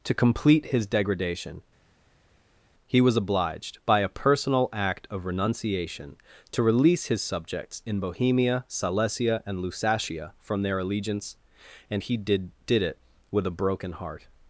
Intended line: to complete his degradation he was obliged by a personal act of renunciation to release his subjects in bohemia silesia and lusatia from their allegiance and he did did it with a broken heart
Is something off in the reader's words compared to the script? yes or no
no